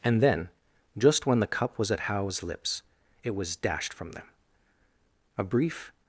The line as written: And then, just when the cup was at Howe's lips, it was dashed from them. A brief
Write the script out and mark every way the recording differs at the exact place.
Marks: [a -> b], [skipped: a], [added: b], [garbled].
And then, just when the cup was at Howe's lips, it was dashed from them. A brief